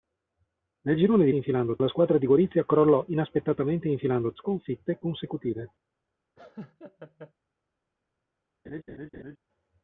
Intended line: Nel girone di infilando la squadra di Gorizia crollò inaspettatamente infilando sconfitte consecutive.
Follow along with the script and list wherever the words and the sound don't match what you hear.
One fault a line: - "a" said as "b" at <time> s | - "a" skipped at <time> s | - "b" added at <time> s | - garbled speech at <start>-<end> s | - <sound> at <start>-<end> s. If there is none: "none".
- laugh at 6.4-7.3 s
- laugh at 8.6-9.4 s